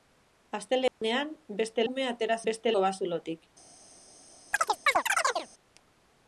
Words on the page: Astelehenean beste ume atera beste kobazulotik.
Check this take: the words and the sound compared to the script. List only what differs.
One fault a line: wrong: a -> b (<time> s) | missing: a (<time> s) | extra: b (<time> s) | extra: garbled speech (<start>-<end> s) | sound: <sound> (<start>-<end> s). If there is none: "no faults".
sound: dropout (0.9-1.0 s)
sound: chirp (4.5-5.5 s)